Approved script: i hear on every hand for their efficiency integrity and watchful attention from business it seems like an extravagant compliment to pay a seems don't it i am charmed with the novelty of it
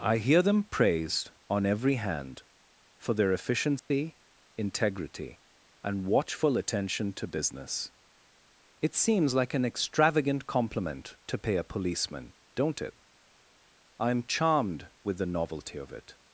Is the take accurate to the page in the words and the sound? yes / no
no